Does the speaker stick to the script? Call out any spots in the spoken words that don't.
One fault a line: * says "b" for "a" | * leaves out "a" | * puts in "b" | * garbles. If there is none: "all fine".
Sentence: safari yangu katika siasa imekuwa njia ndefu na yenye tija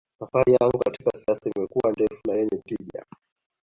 * leaves out "njia"